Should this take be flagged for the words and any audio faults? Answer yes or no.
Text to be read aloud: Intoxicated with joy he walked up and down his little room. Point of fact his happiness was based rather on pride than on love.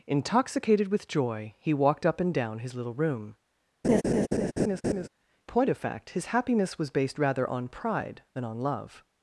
yes